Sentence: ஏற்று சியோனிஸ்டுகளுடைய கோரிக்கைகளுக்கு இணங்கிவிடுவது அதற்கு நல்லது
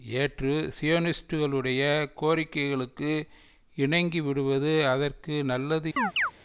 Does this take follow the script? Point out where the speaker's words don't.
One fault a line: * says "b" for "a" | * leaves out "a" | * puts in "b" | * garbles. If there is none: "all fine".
all fine